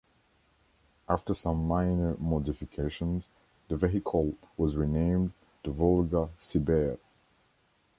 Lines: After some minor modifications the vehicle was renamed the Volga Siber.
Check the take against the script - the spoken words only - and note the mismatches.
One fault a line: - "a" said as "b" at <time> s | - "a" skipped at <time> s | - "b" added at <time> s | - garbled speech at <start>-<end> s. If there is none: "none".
none